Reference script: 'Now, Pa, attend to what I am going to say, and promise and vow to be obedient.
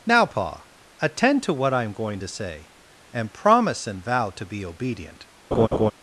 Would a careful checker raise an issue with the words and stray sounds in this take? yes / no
yes